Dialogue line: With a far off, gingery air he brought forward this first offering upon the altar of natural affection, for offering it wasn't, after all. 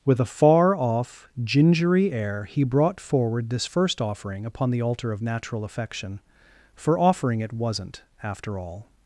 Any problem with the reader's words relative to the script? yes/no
no